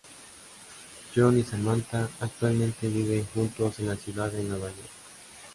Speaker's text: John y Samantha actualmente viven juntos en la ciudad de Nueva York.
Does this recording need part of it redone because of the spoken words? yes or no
no